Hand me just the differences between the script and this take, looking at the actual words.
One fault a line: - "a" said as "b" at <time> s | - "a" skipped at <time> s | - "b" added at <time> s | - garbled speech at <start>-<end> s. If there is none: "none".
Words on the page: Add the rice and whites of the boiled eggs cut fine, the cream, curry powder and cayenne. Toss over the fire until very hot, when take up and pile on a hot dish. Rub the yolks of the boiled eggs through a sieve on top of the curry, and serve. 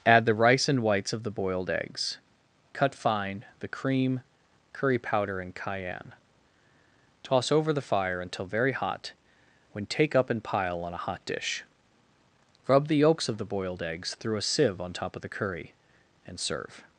none